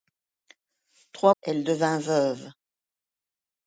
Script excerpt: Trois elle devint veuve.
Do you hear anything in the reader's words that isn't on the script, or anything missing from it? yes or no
no